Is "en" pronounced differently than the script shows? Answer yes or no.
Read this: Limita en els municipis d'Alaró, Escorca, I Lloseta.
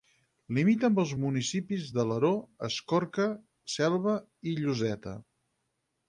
yes